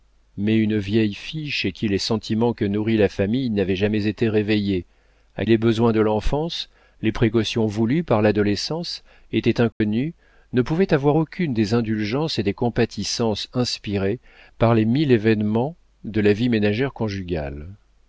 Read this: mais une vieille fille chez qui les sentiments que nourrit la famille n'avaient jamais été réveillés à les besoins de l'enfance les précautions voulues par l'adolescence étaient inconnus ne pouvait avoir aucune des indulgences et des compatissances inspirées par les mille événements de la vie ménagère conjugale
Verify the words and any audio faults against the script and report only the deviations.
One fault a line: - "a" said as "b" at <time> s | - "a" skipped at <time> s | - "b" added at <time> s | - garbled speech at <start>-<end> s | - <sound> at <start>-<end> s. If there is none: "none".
- dropout at 9.7-9.8 s